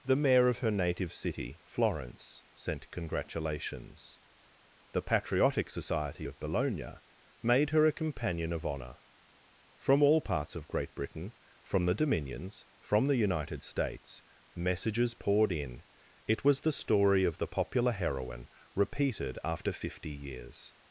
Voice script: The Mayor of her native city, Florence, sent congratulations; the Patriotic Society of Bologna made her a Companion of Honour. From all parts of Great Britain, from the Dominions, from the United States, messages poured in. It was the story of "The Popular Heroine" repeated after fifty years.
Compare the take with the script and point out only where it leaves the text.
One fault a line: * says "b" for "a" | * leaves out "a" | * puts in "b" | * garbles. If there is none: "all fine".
all fine